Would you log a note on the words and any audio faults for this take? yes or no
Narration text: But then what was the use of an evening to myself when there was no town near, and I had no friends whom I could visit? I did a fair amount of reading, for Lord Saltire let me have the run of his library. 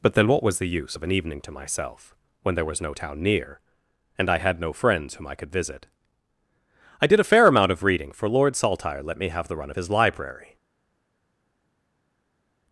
no